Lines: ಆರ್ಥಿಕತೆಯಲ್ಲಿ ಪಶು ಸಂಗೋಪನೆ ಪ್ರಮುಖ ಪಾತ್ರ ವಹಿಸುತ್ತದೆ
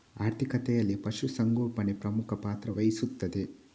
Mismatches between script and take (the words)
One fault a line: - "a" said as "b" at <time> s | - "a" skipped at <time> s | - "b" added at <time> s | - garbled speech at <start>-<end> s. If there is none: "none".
none